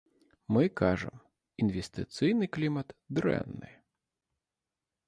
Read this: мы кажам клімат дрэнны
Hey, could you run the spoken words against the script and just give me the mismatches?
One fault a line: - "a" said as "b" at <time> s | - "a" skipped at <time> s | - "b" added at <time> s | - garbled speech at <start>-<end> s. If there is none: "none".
- "інвестыцыйны" added at 1.6 s